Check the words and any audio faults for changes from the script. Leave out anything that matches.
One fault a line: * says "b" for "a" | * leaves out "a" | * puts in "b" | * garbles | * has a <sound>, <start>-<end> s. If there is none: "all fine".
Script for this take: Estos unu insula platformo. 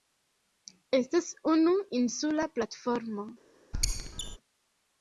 * says "Estas" for "Estos"
* has a squeak, 3.7-4.4 s